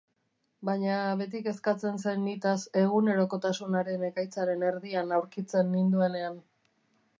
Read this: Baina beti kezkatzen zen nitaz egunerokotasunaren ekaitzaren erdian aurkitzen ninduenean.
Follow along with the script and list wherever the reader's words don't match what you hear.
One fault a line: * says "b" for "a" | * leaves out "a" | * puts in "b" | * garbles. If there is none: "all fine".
all fine